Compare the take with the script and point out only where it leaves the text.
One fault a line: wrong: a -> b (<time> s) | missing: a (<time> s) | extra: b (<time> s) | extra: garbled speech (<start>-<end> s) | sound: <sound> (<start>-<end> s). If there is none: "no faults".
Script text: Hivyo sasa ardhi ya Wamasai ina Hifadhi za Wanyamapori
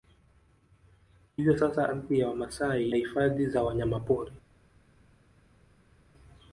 missing: ina (2.9 s)